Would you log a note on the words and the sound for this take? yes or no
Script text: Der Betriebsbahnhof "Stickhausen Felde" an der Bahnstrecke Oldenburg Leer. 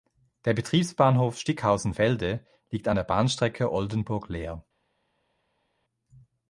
yes